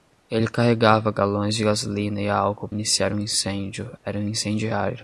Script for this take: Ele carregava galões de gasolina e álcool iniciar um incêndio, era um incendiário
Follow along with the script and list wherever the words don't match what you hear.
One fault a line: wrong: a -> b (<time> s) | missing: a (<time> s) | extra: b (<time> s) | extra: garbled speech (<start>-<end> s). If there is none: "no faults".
no faults